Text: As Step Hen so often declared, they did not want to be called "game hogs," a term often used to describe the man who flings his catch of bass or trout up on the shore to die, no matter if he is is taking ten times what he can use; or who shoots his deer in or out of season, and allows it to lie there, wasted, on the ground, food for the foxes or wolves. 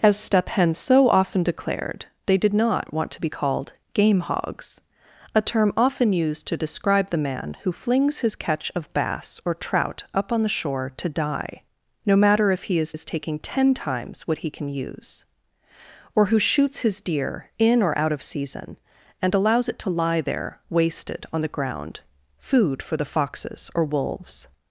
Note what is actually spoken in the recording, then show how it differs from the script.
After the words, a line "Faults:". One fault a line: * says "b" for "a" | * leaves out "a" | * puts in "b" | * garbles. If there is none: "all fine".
As Step Hen so often declared, they did not want to be called "game hogs," a term often used to describe the man who flings his catch of bass or trout up on the shore to die, no matter if he is is taking ten times what he can use; or who shoots his deer in or out of season, and allows it to lie there, wasted, on the ground, food for the foxes or wolves.
Faults:
all fine